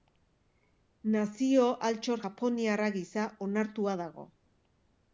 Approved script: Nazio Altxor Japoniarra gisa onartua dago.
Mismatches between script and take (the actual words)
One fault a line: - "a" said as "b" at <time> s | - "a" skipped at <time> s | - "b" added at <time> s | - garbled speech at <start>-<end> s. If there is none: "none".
none